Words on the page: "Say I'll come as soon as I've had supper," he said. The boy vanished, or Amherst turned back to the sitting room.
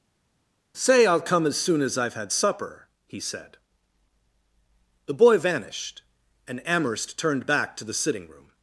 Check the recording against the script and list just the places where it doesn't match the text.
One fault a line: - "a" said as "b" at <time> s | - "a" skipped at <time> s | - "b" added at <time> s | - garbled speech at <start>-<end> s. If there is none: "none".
- "or" said as "and" at 6.5 s